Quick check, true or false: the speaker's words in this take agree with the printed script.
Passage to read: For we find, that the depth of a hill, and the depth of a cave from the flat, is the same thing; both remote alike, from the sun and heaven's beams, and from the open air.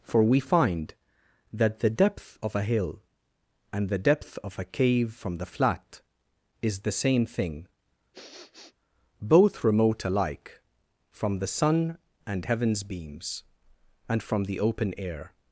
true